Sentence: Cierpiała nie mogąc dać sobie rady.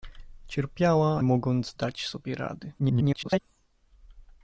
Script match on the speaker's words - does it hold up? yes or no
no